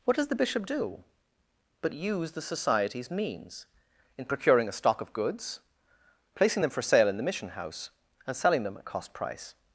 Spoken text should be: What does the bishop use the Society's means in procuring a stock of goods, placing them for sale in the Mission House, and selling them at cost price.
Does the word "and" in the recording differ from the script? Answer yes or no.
no